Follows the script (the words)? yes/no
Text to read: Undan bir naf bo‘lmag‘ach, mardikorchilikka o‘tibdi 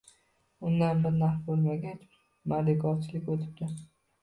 yes